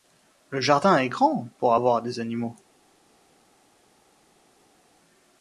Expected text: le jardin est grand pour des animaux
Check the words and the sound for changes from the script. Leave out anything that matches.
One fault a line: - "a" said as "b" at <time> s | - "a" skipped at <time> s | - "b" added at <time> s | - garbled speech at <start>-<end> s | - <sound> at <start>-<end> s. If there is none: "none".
- "avoir" added at 1.7 s